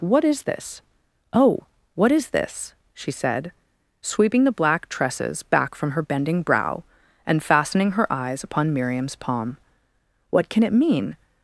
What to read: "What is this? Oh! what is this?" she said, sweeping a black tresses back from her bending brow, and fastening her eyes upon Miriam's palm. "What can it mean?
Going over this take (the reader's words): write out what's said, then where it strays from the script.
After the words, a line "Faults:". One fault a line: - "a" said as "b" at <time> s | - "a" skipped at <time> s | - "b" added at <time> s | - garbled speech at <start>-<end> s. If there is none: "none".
"What is this? Oh! what is this?" she said, sweeping the black tresses back from her bending brow, and fastening her eyes upon Miriam's palm. "What can it mean?
Faults:
- "a" said as "the" at 4.5 s